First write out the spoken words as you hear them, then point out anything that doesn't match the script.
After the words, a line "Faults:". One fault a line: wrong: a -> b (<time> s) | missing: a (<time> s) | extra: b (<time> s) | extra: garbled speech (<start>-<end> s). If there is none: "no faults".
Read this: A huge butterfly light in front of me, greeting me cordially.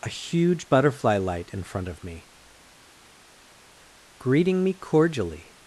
A huge butterfly light in front of me, greeting me cordially.
Faults:
no faults